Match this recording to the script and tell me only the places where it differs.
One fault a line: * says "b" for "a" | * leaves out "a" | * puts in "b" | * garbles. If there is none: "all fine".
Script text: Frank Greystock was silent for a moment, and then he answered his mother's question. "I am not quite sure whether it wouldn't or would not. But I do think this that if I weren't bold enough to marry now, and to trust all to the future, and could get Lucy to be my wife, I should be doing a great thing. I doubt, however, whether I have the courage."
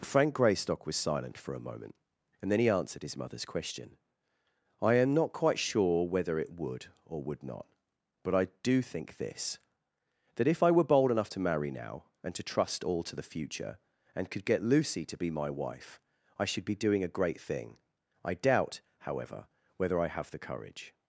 * says "would" for "wouldn't"
* says "were" for "weren't"